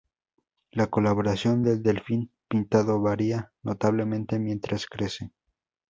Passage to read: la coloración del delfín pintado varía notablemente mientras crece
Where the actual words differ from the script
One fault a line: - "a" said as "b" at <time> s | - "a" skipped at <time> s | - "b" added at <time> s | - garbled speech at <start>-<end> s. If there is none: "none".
none